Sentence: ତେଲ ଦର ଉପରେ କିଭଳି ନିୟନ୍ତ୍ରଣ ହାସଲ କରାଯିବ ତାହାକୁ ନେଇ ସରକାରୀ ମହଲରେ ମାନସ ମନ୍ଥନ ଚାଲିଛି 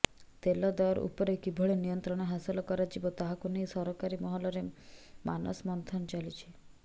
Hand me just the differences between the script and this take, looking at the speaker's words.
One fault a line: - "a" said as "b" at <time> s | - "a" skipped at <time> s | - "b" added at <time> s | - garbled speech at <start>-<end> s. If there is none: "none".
none